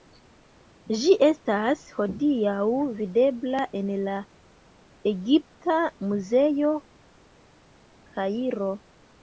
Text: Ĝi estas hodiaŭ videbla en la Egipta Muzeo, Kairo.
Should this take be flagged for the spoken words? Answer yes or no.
no